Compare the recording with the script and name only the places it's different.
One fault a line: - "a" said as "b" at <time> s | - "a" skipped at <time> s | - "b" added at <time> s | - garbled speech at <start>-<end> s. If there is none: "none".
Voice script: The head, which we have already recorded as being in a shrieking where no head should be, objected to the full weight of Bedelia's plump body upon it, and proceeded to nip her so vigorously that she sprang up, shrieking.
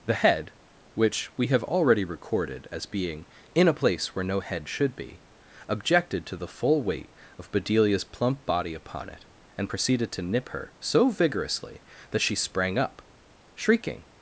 - "shrieking" said as "place" at 3.7 s